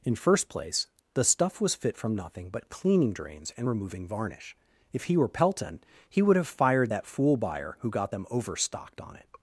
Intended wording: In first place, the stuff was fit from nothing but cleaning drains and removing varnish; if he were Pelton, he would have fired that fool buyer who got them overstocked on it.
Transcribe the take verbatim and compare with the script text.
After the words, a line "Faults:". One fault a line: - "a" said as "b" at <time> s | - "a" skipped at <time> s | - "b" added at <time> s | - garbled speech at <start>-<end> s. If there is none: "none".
In first place, the stuff was fit from nothing but cleaning drains and removing varnish; if he were Pelton, he would have fired that fool buyer who got them overstocked on it.
Faults:
none